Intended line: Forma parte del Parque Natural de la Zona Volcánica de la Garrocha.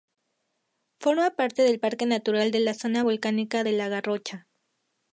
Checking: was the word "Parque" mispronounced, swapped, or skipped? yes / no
no